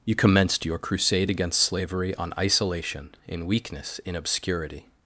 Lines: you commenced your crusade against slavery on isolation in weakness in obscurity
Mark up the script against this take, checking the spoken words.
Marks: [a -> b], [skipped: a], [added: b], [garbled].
you commenced your crusade against slavery on isolation in weakness in obscurity